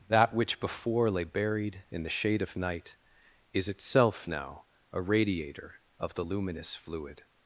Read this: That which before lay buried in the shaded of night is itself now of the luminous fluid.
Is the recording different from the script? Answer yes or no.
yes